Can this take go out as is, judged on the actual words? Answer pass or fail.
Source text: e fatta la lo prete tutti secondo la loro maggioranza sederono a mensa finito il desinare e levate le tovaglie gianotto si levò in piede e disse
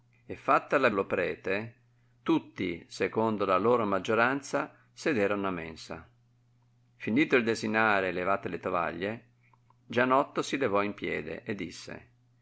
pass